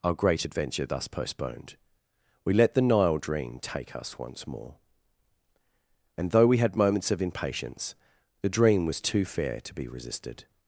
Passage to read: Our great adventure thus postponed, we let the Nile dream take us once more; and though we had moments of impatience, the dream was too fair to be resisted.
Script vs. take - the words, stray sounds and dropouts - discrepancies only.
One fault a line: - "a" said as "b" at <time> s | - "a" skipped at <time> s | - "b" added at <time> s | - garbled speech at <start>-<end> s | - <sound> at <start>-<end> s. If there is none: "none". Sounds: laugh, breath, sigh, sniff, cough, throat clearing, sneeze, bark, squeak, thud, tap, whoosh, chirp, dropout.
none